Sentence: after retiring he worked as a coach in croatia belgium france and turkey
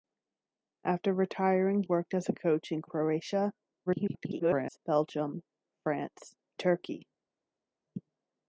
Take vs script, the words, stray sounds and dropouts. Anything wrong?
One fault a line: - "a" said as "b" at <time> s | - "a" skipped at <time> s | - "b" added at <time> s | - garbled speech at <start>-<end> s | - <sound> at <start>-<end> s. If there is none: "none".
- "he" skipped at 1.8 s
- garbled speech at 3.9-4.8 s
- "and" skipped at 6.4 s